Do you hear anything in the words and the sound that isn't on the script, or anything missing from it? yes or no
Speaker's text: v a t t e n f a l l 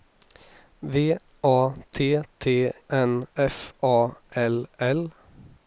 yes